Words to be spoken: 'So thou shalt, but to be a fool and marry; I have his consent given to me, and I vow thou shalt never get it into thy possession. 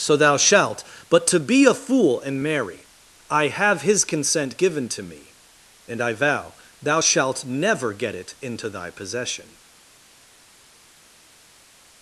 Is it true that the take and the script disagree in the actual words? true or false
false